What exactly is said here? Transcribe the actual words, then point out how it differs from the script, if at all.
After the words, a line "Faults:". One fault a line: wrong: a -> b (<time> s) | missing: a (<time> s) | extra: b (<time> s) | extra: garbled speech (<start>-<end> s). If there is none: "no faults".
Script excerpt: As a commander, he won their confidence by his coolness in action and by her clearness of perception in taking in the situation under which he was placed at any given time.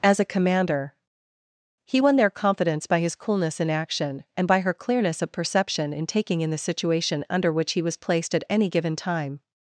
As a commander, he won their confidence by his coolness in action and by her clearness of perception in taking in the situation under which he was placed at any given time.
Faults:
no faults